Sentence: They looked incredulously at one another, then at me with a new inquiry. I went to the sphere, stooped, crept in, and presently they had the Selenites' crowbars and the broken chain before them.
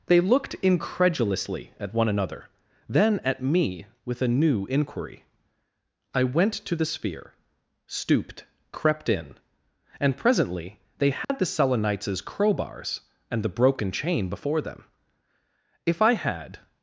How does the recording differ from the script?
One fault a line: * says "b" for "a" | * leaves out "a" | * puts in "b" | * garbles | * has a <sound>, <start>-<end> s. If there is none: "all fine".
* has a dropout, 11.2-11.3 s
* puts in "If I had"